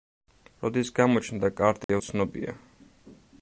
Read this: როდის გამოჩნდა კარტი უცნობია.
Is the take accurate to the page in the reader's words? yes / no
yes